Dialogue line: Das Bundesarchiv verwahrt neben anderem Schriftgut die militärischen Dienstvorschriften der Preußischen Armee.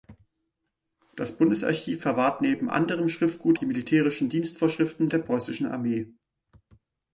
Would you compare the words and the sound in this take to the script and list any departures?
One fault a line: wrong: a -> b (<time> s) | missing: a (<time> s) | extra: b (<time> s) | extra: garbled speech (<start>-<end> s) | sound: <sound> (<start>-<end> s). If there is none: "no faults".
no faults